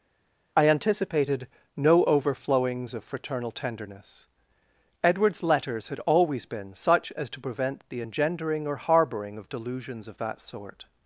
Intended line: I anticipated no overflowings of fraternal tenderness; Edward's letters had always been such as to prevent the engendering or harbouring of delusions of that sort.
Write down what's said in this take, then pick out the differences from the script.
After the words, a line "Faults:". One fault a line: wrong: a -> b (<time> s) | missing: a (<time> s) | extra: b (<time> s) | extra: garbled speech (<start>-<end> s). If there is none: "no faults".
I anticipated no overflowings of fraternal tenderness; Edward's letters had always been such as to prevent the engendering or harbouring of delusions of that sort.
Faults:
no faults